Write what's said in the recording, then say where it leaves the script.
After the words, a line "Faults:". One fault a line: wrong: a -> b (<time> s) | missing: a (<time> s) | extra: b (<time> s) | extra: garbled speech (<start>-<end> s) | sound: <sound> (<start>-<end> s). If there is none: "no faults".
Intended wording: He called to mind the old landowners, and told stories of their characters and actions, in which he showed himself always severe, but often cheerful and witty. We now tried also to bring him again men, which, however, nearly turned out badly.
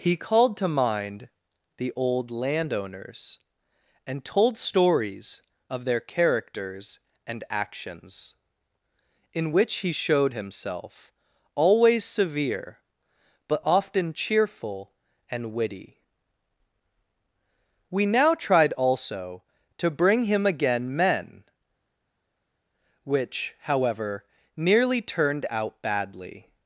He called to mind the old landowners, and told stories of their characters and actions, in which he showed himself always severe, but often cheerful and witty. We now tried also to bring him again men, which, however, nearly turned out badly.
Faults:
no faults